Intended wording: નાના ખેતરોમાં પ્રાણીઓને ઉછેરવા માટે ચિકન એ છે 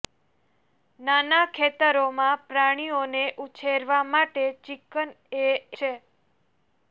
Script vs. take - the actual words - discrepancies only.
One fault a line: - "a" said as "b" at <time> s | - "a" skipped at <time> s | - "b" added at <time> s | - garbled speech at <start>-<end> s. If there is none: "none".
none